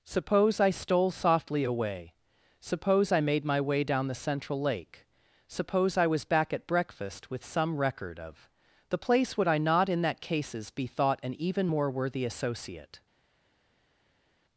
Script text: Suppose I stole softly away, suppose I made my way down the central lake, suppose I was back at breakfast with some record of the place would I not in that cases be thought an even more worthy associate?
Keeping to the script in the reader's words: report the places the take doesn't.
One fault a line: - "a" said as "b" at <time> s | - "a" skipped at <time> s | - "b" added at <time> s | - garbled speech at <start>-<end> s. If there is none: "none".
none